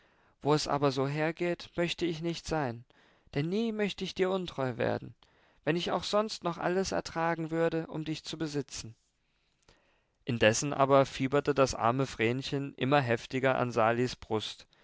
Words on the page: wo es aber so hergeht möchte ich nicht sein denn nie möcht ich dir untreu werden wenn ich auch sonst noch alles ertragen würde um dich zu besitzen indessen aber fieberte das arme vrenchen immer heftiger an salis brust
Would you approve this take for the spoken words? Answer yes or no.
yes